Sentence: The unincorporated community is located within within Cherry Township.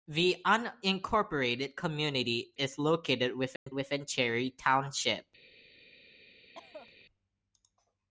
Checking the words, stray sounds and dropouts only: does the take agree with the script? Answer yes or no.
no